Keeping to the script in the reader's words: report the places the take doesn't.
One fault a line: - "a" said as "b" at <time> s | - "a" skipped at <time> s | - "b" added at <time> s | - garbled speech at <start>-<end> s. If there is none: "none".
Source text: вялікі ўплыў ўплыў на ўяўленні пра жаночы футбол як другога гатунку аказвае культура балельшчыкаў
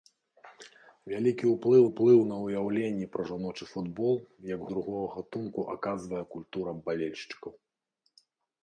none